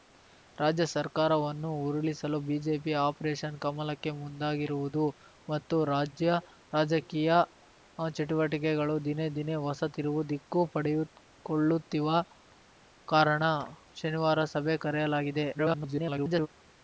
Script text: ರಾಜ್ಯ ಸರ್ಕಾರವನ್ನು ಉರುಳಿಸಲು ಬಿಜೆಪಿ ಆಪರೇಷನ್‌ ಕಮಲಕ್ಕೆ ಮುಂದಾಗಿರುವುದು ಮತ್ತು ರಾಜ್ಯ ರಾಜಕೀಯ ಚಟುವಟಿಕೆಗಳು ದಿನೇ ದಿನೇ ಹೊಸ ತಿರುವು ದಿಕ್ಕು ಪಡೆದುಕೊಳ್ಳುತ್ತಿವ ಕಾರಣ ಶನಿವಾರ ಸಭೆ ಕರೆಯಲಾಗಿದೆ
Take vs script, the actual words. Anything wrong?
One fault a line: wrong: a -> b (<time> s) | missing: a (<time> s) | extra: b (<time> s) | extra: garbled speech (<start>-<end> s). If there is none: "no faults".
extra: garbled speech (15.5-16.5 s)